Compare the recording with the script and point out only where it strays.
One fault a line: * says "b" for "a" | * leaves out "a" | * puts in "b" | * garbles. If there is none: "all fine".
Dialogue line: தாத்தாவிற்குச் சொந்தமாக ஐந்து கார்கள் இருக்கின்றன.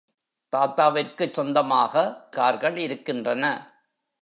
* leaves out "ஐந்து"